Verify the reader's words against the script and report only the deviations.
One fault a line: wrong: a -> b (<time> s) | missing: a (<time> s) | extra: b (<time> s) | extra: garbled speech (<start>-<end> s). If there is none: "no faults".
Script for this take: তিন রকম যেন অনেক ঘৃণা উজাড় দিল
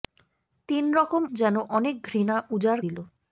no faults